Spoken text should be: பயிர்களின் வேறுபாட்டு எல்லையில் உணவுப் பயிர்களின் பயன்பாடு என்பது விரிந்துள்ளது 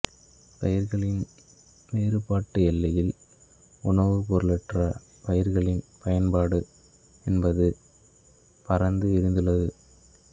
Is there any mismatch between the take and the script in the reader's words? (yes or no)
yes